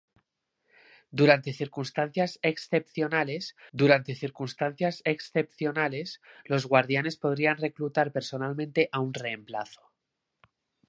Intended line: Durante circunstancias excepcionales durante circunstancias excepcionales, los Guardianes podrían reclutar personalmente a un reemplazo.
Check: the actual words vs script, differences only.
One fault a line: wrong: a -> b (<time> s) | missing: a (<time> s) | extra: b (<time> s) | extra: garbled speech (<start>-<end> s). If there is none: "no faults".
no faults